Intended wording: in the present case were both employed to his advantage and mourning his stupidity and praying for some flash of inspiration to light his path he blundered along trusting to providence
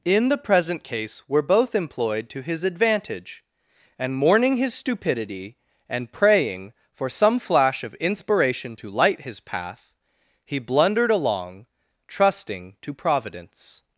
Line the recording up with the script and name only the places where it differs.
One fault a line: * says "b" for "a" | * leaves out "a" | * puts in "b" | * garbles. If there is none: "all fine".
all fine